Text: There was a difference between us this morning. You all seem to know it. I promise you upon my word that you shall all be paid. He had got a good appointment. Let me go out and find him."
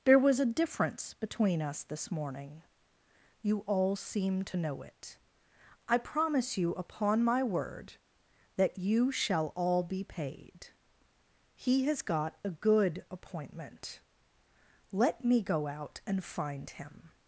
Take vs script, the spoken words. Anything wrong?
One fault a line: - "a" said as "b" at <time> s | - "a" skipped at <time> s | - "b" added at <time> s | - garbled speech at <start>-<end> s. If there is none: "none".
- "had" said as "has" at 11.8 s